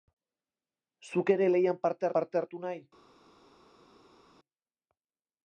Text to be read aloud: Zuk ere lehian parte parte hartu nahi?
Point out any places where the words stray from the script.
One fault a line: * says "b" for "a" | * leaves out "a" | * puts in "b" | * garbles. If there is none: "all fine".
all fine